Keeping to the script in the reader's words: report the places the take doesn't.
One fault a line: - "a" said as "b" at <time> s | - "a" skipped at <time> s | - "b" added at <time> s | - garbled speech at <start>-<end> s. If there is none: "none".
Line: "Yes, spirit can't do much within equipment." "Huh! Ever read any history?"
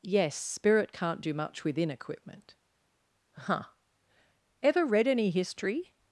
none